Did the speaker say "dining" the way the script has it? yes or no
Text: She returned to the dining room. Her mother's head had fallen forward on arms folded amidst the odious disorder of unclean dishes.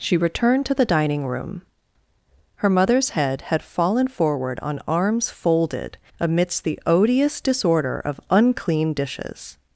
yes